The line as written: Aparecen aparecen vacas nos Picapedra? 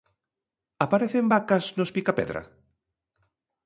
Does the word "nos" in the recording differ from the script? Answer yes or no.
no